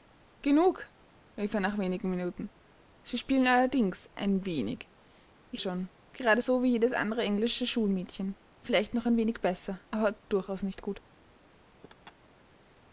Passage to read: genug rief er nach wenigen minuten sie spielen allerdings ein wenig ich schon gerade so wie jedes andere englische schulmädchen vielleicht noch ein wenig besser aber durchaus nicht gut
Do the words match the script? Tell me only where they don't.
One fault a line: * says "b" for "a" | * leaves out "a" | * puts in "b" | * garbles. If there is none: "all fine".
all fine